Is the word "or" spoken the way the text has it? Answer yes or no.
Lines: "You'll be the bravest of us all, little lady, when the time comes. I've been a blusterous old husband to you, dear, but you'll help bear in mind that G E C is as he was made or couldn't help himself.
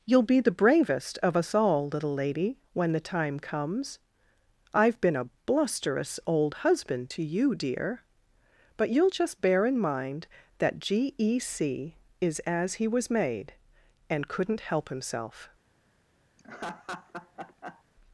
no